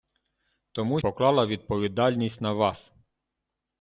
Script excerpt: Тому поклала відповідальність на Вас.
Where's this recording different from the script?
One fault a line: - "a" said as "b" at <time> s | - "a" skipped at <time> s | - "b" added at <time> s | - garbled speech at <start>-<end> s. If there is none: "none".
none